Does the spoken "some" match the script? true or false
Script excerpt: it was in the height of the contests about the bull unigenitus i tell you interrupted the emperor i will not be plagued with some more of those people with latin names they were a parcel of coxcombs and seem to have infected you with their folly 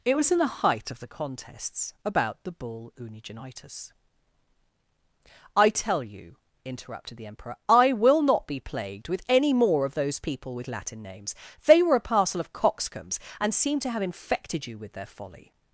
false